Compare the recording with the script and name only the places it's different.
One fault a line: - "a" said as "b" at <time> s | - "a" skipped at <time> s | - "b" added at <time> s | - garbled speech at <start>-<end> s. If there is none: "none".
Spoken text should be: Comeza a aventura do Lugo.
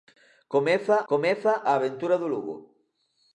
- "comeza" added at 1.1 s